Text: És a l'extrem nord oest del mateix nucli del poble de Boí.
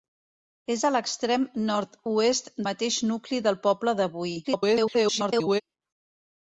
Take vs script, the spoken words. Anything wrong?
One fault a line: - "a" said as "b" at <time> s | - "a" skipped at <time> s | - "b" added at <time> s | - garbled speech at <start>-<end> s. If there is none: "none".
- "del" skipped at 2.5 s
- garbled speech at 4.4-5.6 s